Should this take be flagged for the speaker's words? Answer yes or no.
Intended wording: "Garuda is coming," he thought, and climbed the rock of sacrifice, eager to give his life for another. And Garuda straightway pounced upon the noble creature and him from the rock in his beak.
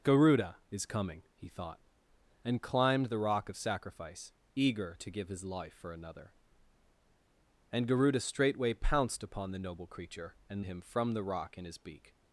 no